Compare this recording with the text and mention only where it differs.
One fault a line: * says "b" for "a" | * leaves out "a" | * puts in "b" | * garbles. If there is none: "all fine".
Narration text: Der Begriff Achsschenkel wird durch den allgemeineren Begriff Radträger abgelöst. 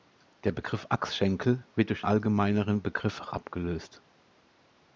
* leaves out "den"
* leaves out "Radträger"